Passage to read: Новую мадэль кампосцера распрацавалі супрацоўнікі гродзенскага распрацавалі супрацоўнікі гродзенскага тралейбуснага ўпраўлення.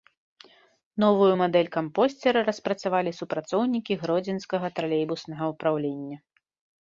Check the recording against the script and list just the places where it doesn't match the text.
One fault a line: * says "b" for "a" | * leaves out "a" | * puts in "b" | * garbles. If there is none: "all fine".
* leaves out "распрацавалі супрацоўнікі гродзенскага"